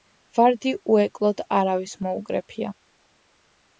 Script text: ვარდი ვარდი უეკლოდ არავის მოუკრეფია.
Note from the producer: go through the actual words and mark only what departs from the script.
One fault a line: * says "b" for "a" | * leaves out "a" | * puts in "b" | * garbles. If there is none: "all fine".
* leaves out "ვარდი"